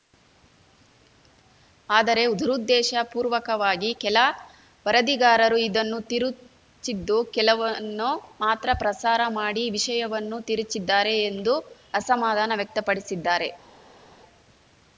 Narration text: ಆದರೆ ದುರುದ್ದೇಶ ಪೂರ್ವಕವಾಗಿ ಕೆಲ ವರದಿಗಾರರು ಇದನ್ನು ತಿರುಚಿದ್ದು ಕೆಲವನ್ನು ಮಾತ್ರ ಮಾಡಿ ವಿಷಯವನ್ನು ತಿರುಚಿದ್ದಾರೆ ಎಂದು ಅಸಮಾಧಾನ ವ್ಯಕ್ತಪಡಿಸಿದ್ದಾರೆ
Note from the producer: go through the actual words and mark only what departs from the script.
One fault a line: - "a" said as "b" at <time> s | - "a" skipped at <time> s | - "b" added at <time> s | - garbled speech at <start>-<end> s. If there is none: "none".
- "ಪ್ರಸಾರ" added at 8.8 s